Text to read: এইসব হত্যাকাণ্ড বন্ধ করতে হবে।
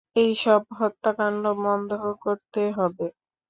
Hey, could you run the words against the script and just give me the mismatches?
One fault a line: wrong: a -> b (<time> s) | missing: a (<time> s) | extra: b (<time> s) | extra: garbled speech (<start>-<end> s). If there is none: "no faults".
no faults